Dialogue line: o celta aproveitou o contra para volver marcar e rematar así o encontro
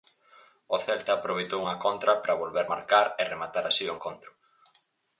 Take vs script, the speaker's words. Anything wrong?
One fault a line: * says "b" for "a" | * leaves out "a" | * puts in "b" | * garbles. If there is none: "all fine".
* says "unha" for "o"